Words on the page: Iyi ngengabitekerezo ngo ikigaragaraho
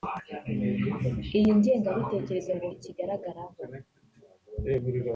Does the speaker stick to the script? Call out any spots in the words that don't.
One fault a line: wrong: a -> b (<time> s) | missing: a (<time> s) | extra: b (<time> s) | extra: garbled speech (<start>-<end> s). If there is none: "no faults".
no faults